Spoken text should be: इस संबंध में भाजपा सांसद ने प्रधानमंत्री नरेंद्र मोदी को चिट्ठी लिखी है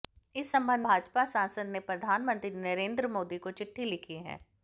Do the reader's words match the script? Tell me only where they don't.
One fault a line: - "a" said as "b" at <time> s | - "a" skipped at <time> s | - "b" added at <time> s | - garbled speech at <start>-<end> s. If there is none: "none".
- "में" skipped at 0.8 s